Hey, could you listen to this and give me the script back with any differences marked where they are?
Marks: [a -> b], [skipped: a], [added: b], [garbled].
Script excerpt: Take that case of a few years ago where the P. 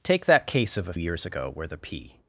Take that case of a [skipped: few] years ago where the P.